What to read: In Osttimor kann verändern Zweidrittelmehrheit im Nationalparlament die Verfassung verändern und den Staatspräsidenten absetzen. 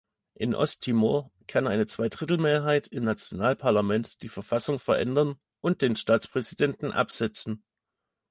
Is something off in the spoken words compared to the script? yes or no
yes